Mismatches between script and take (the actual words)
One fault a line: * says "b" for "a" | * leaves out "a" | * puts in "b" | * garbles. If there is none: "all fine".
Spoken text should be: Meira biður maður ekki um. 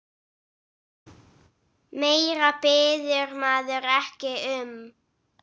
all fine